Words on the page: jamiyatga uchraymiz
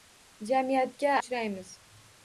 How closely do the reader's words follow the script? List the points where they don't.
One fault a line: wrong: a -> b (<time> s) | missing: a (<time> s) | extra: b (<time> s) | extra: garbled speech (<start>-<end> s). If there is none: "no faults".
no faults